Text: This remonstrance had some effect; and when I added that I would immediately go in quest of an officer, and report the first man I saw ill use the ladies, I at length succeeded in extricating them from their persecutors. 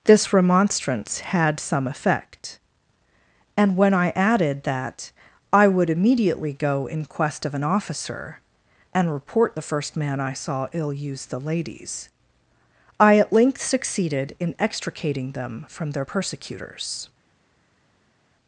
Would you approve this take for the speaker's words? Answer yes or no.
yes